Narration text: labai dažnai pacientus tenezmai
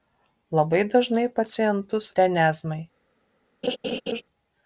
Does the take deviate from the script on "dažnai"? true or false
false